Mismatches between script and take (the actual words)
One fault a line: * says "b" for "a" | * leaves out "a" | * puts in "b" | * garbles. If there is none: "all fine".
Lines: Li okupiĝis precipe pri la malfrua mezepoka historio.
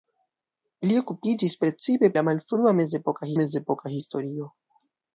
* leaves out "pri"
* puts in "mezepoka"